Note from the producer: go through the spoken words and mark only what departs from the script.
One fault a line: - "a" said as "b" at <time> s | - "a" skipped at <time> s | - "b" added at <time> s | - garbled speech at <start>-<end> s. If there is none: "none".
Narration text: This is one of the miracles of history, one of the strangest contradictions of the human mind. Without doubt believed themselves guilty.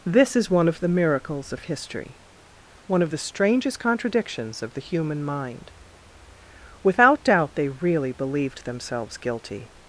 - "they really" added at 7.6 s